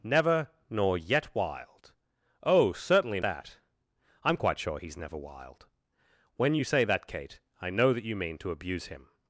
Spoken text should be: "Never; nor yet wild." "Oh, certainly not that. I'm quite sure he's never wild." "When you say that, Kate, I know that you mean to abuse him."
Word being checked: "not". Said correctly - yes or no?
no